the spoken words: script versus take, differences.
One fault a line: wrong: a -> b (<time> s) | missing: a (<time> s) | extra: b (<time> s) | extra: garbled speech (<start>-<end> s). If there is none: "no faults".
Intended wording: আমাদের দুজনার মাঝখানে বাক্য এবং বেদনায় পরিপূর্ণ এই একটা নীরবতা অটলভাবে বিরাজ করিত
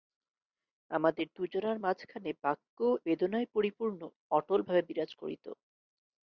missing: এবং (2.8 s)
missing: এই একটা নীরবতা (4.0 s)